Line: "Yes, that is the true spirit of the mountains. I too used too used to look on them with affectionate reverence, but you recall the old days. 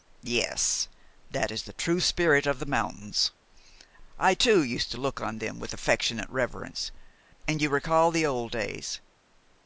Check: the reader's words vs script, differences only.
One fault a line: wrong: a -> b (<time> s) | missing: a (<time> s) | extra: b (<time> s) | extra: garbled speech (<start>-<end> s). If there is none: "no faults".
missing: too used (4.9 s)
wrong: but -> and (7.5 s)